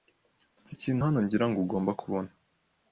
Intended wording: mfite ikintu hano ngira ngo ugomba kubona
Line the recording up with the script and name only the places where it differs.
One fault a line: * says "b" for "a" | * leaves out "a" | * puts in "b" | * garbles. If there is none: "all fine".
all fine